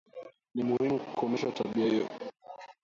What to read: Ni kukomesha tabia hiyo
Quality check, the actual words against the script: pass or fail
fail